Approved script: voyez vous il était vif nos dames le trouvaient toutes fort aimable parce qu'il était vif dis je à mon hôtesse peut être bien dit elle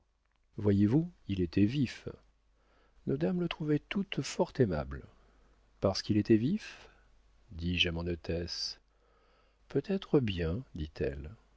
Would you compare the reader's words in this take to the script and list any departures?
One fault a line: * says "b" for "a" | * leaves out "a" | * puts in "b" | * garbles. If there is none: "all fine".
all fine